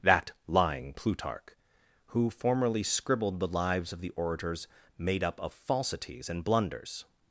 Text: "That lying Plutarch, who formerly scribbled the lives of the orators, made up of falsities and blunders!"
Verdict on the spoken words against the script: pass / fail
pass